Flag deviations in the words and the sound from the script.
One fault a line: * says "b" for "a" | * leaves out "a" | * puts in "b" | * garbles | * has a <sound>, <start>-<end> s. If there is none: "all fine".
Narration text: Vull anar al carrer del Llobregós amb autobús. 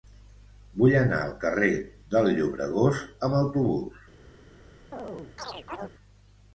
* has a chirp, 4.9-5.9 s